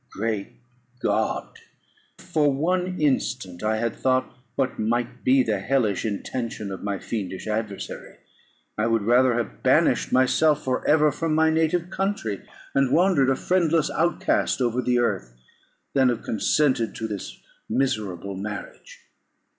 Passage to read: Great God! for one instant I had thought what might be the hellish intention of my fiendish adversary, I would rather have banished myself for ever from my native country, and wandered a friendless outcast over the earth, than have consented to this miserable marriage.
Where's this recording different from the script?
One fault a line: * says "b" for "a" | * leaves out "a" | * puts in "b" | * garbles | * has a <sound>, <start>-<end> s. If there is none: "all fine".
all fine